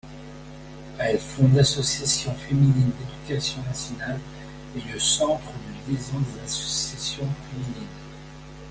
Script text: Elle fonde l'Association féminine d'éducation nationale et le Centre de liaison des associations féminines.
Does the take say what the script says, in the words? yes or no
yes